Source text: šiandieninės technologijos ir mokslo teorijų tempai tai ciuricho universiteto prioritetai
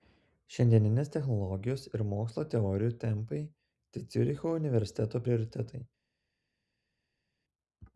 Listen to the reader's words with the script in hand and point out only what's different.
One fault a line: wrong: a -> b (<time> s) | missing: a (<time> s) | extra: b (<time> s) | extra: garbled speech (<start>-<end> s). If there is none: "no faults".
no faults